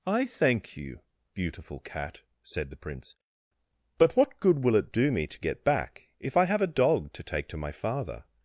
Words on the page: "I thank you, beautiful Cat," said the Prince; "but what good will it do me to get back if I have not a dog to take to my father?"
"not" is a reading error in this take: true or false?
true